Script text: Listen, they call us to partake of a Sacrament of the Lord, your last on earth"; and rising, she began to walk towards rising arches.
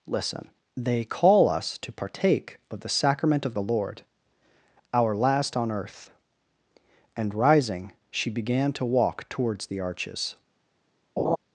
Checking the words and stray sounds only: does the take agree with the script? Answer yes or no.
no